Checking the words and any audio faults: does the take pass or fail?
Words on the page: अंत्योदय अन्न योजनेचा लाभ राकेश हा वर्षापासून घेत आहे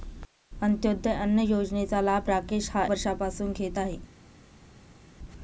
pass